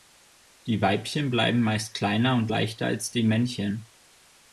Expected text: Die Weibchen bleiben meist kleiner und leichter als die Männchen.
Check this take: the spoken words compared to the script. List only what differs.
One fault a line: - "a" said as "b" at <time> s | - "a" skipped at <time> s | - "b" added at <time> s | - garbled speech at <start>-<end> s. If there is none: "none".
none